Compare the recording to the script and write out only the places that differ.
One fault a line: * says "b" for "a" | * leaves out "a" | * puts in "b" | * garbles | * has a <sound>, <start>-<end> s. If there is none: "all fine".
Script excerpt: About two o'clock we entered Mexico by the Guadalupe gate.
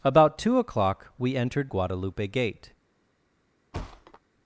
* leaves out "Mexico by the"
* has a thud, 3.7-4.2 s